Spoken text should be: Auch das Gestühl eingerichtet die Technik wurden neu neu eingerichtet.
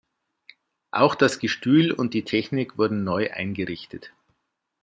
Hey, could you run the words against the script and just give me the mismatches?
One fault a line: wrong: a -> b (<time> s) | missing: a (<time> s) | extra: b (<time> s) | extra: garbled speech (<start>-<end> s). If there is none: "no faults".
wrong: eingerichtet -> und (1.9 s)
missing: neu (3.3 s)